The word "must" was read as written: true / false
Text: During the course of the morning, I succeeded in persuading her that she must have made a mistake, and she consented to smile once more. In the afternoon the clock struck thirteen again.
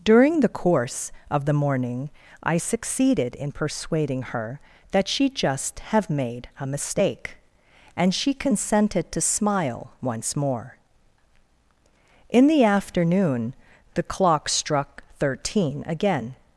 false